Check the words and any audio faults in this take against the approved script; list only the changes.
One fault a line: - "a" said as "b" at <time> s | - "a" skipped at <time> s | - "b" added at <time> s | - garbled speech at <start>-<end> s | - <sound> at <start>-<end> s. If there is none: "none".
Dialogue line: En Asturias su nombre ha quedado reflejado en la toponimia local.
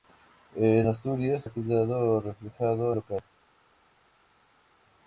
- "su nombre" skipped at 1.4 s
- "en la toponimia" skipped at 3.0 s